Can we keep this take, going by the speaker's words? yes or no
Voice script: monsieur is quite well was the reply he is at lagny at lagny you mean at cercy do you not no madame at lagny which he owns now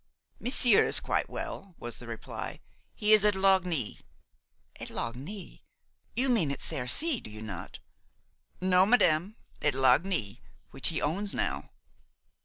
yes